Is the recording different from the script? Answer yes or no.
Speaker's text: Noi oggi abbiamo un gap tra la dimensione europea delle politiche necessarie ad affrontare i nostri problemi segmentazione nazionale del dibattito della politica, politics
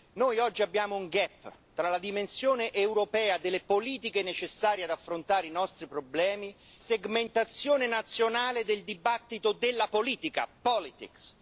no